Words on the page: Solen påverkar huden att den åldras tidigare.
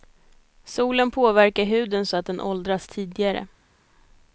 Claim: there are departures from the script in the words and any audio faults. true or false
true